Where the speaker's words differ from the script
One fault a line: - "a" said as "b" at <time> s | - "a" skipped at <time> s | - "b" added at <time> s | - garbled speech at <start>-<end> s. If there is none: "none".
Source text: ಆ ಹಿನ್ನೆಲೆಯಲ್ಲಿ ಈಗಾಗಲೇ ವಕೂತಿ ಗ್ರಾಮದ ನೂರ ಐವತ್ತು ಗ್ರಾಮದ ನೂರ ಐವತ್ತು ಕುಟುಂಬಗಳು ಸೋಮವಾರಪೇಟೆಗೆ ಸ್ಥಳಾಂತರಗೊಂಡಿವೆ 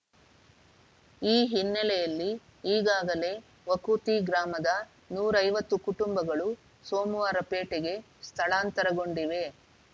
- "ಆ" said as "ಈ" at 1.2 s
- "ಗ್ರಾಮದ ನೂರ ಐವತ್ತು" skipped at 5.8 s